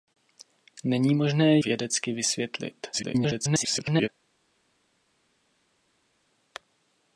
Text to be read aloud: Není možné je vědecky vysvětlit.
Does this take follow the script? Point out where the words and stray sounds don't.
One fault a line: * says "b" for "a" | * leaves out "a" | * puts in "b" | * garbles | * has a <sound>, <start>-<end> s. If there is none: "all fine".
* leaves out "je"
* garbles